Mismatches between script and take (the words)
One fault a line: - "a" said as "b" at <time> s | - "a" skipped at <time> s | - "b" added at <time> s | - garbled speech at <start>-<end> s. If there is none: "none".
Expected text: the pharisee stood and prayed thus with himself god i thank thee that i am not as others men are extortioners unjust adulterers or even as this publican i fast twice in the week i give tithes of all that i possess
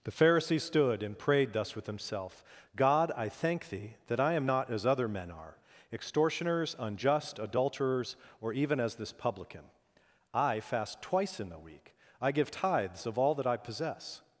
- "others" said as "other" at 4.9 s